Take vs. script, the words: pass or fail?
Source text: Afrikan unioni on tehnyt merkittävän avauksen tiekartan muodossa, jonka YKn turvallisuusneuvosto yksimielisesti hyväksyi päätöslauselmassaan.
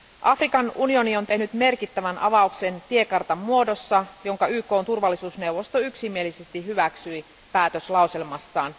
pass